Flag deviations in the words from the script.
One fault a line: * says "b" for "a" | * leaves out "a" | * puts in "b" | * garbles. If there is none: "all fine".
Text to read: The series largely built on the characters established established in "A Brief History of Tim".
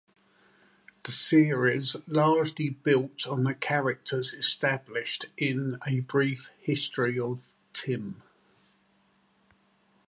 * leaves out "established"